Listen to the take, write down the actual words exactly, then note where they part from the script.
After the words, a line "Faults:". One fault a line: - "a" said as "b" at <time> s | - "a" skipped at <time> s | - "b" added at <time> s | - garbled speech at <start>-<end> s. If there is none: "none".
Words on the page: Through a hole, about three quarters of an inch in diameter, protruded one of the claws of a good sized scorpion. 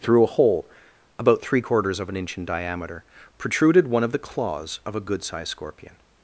Through a hole, about three quarters of an inch in diameter, protruded one of the claws of a good sized scorpion.
Faults:
none